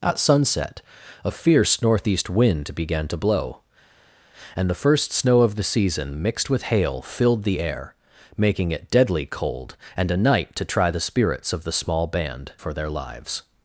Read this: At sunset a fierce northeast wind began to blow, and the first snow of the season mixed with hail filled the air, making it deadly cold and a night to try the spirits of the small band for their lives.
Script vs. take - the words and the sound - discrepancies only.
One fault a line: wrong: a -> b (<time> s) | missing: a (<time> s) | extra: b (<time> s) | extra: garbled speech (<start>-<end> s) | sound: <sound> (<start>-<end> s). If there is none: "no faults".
no faults